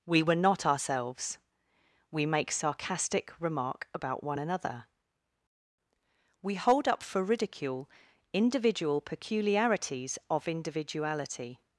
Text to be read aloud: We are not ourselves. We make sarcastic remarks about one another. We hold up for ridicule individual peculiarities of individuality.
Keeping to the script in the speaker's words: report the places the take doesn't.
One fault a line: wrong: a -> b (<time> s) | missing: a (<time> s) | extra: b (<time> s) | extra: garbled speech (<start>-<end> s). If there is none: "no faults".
wrong: are -> were (0.2 s)
wrong: remarks -> remark (3.4 s)